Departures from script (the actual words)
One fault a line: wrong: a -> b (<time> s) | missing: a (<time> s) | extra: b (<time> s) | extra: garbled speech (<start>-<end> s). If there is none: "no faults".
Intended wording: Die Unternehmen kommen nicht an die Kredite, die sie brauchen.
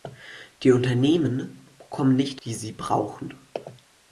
missing: an die Kredite (2.4 s)